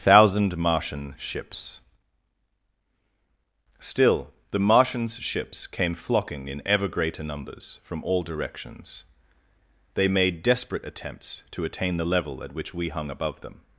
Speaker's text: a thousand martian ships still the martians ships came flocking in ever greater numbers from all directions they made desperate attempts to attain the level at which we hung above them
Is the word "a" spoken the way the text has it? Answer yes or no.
no